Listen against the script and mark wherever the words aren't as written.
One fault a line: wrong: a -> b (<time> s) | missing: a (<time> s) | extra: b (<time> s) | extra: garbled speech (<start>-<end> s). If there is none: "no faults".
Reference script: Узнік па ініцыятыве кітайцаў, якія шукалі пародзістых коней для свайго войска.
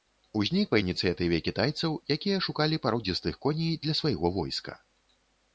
no faults